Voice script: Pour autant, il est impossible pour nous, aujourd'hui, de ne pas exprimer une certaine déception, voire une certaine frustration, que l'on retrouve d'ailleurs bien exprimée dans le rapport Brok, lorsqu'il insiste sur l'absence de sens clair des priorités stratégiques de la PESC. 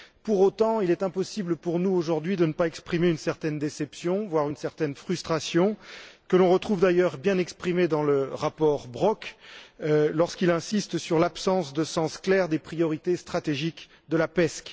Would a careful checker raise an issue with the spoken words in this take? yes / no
no